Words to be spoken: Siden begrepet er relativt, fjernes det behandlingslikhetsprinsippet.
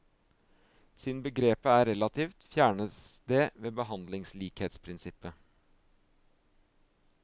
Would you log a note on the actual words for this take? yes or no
yes